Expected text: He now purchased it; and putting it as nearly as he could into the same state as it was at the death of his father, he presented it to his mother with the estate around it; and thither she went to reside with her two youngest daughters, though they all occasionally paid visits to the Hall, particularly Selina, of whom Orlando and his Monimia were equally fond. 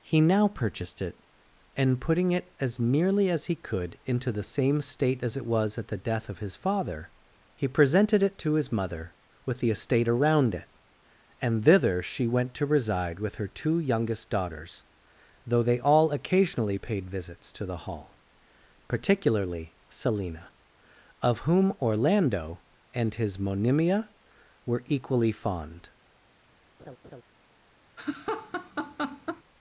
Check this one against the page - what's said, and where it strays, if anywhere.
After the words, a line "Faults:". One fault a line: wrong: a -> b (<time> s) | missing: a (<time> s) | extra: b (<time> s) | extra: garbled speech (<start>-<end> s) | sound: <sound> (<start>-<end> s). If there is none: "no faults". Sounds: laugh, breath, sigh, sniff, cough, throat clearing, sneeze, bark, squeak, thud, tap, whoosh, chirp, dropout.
He now purchased it; and putting it as nearly as he could into the same state as it was at the death of his father, he presented it to his mother with the estate around it; and thither she went to reside with her two youngest daughters, though they all occasionally paid visits to the Hall, particularly Selina, of whom Orlando and his Monimia were equally fond.
Faults:
sound: laugh (26.8-27.2 s)
sound: laugh (28.0-29.4 s)